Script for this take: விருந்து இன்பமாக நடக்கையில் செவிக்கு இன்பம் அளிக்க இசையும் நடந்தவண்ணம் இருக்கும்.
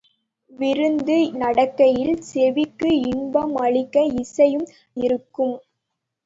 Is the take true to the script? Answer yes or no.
no